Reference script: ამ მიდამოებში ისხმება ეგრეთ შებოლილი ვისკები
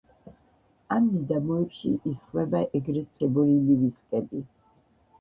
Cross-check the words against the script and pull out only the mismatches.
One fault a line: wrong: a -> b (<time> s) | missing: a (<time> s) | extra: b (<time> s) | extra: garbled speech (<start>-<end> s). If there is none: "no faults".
no faults